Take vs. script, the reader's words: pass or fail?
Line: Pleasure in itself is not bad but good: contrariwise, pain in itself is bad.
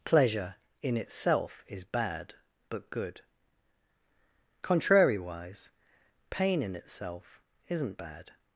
fail